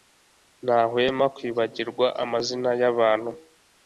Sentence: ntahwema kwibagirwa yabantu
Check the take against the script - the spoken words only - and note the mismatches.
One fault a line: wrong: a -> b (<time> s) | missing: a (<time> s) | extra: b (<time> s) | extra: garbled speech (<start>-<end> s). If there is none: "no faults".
extra: amazina (2.2 s)